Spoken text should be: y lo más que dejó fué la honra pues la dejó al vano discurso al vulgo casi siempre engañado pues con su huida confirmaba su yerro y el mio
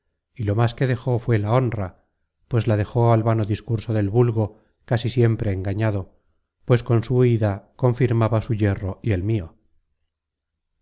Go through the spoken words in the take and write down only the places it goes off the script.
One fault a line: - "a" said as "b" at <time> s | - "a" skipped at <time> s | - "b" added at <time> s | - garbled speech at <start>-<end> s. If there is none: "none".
- "al" said as "del" at 3.9 s